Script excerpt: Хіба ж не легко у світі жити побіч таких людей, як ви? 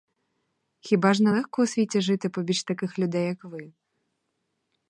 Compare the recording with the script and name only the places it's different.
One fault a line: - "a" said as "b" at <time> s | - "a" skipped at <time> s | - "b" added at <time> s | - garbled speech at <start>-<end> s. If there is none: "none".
none